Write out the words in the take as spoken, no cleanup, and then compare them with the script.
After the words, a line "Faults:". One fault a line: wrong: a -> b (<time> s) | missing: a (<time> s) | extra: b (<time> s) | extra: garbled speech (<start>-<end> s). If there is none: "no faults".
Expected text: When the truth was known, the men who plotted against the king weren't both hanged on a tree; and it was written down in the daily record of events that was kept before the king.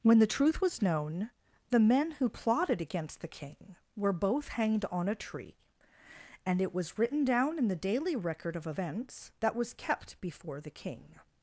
When the truth was known, the men who plotted against the king were both hanged on a tree; and it was written down in the daily record of events that was kept before the king.
Faults:
wrong: weren't -> were (4.0 s)